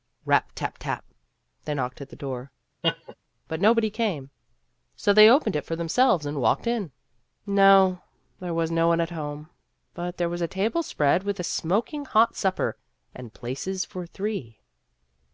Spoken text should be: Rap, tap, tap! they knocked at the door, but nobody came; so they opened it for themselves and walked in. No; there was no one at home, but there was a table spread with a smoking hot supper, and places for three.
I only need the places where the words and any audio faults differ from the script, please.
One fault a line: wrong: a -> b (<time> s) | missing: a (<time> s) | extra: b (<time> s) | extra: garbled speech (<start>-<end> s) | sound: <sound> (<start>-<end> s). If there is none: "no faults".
sound: laugh (2.8-3.2 s)